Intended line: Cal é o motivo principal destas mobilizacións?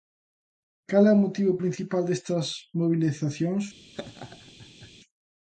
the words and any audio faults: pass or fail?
fail